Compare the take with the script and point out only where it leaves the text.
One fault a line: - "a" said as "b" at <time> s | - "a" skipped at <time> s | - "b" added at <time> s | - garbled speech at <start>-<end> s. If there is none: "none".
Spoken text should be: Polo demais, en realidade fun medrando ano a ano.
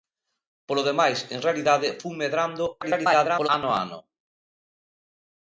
- garbled speech at 2.8-3.5 s